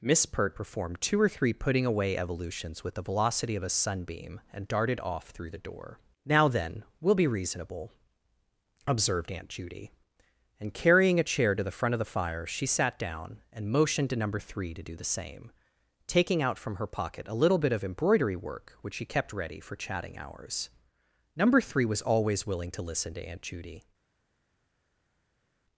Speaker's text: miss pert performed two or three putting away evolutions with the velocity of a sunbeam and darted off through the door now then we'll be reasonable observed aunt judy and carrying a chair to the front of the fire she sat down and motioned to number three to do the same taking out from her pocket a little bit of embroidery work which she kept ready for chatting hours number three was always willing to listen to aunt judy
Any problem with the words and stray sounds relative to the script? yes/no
no